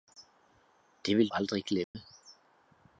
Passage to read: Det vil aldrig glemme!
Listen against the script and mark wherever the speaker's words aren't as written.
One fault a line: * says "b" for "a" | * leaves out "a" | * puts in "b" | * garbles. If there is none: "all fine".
all fine